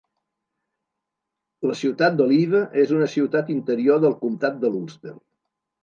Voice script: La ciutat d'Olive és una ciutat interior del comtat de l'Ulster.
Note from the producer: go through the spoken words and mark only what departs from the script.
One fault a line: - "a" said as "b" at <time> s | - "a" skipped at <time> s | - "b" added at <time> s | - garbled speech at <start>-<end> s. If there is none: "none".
none